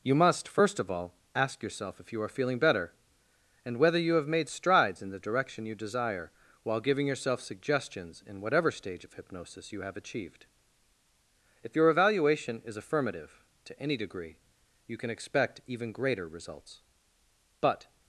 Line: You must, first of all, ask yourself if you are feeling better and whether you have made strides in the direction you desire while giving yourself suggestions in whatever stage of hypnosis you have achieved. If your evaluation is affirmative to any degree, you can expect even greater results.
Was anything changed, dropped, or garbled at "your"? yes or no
no